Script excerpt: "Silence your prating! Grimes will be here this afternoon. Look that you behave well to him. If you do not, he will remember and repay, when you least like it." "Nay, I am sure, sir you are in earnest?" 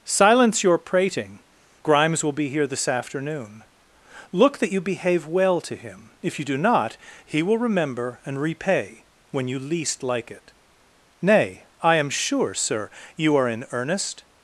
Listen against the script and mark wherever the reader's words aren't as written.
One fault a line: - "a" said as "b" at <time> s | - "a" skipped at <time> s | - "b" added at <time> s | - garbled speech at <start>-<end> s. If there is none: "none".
none